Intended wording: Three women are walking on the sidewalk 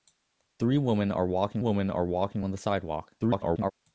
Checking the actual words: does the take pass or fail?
fail